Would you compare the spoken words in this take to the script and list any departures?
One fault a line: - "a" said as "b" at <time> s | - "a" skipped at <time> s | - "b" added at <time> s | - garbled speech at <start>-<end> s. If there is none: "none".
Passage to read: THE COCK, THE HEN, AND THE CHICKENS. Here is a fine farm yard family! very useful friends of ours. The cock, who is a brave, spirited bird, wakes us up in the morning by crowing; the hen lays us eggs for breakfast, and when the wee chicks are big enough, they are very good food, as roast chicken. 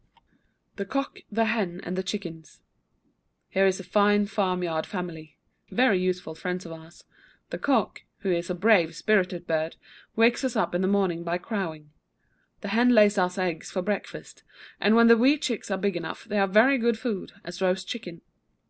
none